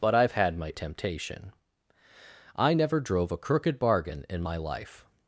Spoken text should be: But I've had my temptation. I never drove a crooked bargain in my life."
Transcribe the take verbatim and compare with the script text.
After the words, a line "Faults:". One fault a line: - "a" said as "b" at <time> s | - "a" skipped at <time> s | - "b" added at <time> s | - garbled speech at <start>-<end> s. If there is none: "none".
But I've had my temptation. I never drove a crooked bargain in my life."
Faults:
none